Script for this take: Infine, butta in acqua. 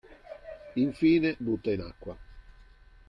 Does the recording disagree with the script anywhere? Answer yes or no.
no